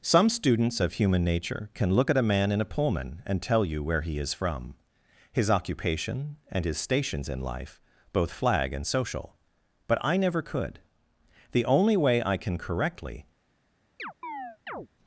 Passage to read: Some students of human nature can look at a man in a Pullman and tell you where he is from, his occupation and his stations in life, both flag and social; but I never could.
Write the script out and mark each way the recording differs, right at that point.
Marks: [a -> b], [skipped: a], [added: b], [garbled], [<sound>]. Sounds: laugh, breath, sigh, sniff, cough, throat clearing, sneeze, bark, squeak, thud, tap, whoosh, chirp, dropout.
Some students of human nature can look at a man in a Pullman and tell you where he is from, his occupation and his stations in life, both flag and social; but I never could. [added: The only way I can correctly] [chirp]